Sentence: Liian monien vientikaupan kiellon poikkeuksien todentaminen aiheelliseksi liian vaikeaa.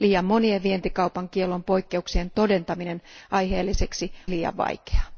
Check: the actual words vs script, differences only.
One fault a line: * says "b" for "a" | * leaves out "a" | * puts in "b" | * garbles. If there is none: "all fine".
all fine